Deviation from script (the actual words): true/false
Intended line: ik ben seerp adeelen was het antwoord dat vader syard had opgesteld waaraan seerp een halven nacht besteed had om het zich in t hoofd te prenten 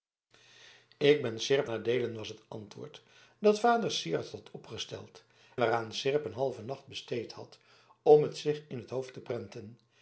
false